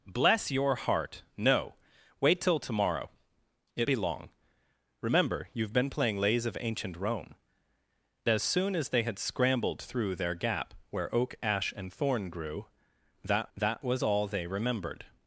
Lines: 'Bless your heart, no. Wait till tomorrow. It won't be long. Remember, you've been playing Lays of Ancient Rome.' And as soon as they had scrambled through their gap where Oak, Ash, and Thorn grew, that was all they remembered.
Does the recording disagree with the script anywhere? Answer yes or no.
yes